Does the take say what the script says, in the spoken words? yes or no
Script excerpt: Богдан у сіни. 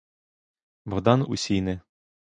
yes